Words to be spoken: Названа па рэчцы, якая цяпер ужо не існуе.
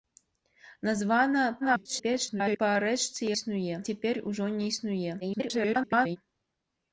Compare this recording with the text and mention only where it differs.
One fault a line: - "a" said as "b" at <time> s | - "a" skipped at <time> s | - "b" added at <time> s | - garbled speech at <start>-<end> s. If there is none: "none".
- garbled speech at 1.6-2.6 s
- "якая" said as "існуе" at 3.4 s
- garbled speech at 5.2-6.2 s